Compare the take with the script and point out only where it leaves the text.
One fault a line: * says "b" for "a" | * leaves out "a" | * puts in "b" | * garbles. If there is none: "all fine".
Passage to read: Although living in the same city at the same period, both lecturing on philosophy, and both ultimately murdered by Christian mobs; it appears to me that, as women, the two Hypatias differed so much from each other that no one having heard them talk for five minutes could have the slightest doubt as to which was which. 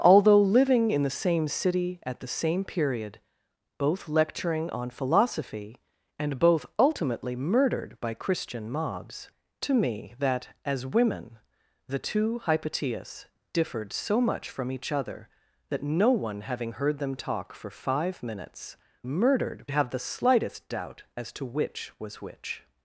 * leaves out "it appears"
* says "murdered" for "could"